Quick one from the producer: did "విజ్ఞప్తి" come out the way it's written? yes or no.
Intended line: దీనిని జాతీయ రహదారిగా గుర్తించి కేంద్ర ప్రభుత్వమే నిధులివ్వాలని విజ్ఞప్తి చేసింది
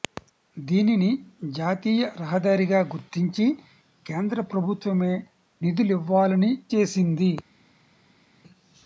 no